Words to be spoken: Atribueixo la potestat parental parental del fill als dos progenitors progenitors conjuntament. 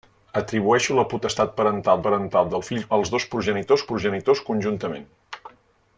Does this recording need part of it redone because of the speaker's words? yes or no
no